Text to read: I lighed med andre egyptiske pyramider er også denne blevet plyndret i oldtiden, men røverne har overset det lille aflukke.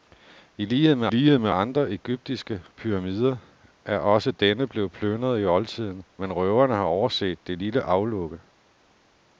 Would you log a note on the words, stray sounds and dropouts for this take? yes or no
yes